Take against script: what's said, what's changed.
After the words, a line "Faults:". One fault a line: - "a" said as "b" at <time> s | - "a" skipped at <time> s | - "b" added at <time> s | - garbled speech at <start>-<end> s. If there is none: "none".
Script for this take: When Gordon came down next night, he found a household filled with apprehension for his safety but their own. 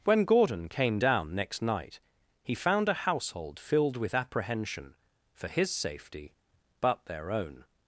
When Gordon came down next night, he found a household filled with apprehension for his safety but their own.
Faults:
none